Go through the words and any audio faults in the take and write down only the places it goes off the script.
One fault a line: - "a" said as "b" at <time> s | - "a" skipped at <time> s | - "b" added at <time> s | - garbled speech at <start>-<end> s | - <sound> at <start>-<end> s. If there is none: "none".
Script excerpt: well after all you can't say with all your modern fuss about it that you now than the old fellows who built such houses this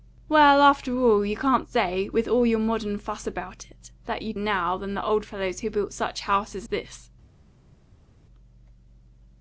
none